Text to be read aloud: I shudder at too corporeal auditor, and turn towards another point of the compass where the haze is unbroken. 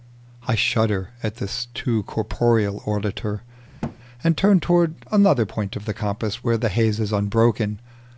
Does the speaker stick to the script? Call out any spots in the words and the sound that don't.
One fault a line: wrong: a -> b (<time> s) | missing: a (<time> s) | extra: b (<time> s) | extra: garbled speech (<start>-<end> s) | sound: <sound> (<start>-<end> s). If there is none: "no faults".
extra: this (1.4 s)
sound: thud (3.8-4.0 s)